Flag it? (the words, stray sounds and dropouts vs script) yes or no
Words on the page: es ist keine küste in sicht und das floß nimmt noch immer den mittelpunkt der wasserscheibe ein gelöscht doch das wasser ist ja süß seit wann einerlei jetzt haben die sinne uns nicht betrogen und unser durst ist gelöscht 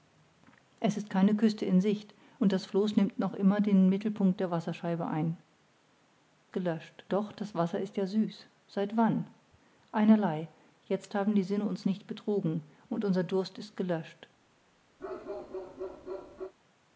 yes